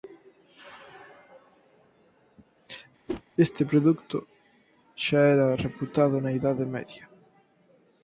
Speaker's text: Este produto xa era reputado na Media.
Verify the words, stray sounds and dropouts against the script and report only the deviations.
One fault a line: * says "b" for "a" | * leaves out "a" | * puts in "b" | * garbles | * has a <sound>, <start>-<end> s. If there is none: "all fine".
* has a whoosh, 3.1-3.2 s
* puts in "Idade"